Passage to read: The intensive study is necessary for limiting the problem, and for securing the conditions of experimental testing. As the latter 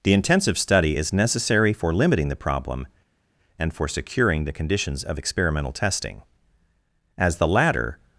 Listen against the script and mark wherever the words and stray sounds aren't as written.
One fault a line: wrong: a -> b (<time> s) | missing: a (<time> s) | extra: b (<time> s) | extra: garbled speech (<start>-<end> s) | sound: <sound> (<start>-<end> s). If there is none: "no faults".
no faults